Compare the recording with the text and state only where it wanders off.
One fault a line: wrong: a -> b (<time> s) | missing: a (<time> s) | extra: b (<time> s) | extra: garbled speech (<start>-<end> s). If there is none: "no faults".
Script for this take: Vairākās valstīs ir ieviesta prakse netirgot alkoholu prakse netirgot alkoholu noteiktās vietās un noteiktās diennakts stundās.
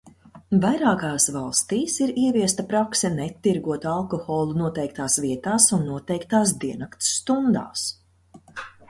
missing: prakse netirgot alkoholu (4.6 s)